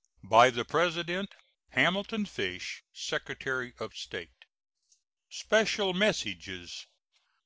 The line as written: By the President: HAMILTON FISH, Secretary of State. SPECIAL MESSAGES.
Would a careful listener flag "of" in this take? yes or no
no